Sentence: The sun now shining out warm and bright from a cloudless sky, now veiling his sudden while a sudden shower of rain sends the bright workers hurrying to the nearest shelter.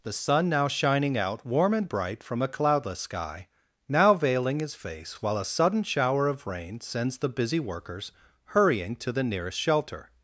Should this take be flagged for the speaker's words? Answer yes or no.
yes